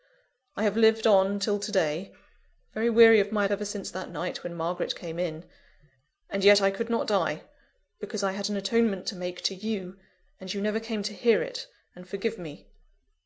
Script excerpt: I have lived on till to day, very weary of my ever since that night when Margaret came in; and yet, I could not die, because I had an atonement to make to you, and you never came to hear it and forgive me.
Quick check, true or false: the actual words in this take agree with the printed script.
true